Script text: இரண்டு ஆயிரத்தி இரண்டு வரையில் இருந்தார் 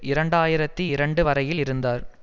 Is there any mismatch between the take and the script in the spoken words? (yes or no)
no